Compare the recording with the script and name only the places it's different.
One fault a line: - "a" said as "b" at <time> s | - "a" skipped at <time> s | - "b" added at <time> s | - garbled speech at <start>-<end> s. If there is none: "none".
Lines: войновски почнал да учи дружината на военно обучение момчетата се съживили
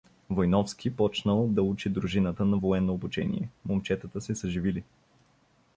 none